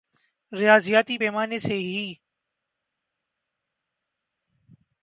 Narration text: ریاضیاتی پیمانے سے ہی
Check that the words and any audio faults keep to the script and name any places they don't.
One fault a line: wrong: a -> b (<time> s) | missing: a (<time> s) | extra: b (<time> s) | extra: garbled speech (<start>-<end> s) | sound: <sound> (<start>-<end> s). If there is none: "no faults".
no faults